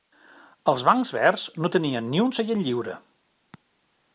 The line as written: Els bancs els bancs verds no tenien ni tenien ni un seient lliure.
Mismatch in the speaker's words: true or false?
true